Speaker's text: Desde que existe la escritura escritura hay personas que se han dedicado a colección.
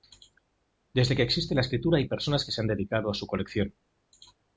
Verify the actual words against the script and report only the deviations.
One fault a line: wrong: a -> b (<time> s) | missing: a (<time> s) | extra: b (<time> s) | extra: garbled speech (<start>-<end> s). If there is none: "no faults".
missing: escritura (2.0 s)
extra: su (3.1 s)